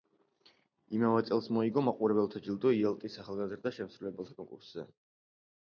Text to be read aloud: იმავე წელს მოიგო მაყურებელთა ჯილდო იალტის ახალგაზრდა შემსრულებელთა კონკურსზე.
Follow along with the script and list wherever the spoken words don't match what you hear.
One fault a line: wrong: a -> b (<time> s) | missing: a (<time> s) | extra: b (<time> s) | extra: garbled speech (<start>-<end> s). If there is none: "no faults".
no faults